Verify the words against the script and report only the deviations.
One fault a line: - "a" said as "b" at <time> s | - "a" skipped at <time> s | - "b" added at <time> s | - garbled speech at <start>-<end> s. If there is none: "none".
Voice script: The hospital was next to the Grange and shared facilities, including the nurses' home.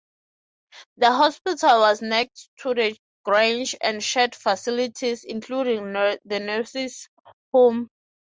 none